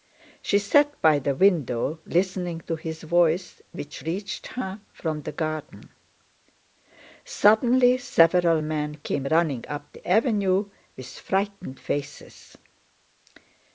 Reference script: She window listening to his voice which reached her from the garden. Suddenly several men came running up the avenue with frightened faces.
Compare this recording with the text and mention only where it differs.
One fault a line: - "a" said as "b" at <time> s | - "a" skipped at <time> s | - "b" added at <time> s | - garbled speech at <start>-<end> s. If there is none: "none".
- "sat by the" added at 0.6 s